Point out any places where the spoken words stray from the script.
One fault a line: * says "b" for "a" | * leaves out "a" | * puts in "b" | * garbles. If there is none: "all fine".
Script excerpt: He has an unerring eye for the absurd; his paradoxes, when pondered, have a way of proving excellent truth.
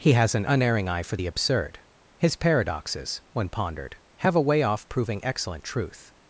* says "off" for "of"